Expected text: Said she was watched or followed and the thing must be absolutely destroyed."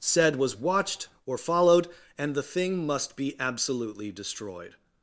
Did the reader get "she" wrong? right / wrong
wrong